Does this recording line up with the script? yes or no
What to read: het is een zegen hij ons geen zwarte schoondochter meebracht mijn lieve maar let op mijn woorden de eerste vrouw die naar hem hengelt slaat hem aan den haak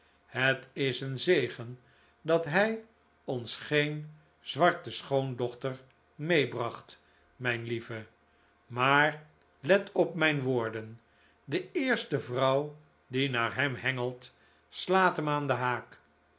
no